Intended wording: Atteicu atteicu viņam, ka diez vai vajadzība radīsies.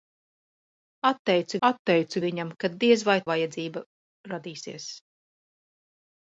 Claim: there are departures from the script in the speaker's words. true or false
false